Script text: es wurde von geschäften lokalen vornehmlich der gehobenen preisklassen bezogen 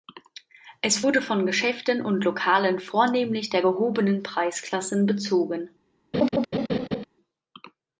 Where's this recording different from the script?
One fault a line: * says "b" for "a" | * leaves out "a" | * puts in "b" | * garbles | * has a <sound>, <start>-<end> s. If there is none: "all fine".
* puts in "und"
* has a laugh, 6.1-7.1 s